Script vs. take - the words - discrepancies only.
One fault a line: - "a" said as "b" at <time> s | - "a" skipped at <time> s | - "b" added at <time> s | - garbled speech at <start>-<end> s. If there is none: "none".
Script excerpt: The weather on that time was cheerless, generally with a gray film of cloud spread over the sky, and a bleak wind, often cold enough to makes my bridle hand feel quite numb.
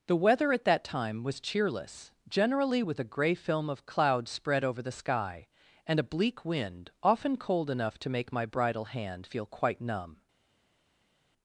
- "on" said as "at" at 0.5 s
- "makes" said as "make" at 8.1 s